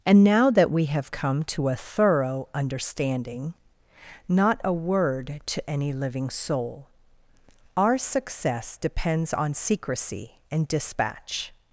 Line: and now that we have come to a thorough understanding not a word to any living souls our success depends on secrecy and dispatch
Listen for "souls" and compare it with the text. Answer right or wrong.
wrong